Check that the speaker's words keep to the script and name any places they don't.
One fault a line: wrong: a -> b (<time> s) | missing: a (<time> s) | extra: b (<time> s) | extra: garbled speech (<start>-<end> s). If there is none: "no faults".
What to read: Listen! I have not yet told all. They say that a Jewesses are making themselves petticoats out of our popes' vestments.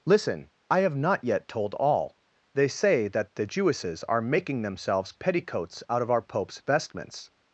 wrong: a -> the (3.4 s)